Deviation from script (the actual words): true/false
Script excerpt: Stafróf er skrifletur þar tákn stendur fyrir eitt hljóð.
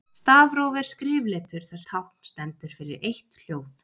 false